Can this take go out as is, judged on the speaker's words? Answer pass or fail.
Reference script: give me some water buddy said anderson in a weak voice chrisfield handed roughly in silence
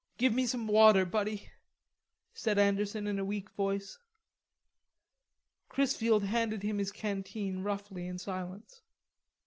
fail